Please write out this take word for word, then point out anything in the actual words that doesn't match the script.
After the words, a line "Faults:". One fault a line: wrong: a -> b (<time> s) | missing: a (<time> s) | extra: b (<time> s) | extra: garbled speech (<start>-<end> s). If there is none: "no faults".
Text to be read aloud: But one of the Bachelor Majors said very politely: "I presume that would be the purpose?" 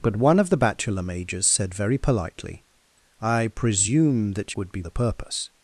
But one of the Bachelor Majors said very politely: "I presume that would be the purpose?"
Faults:
no faults